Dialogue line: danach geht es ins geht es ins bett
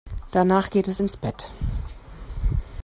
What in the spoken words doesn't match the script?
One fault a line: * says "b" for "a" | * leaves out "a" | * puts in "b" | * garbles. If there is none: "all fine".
* leaves out "geht es ins"